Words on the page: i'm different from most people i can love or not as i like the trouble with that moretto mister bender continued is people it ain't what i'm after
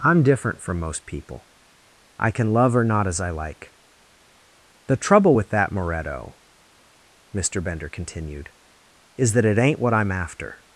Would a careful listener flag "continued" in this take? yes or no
no